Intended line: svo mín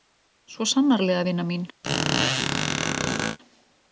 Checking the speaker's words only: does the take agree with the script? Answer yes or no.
no